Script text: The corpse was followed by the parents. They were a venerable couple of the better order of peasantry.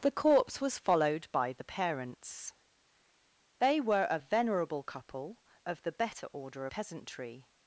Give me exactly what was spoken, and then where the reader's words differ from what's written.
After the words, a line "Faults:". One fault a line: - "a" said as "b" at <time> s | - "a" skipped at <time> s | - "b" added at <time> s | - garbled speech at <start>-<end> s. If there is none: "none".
The corpse was followed by the parents. They were a venerable couple of the better order peasantry.
Faults:
- "of" skipped at 6.7 s